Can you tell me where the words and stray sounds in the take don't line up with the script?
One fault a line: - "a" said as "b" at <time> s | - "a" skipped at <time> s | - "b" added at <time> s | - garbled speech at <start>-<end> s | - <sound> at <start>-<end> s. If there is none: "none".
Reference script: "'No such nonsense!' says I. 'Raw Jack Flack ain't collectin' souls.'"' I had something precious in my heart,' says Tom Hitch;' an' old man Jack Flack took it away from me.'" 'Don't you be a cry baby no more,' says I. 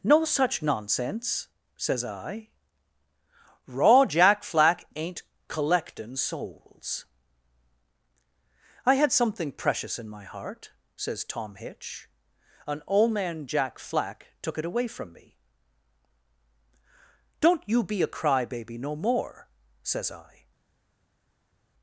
none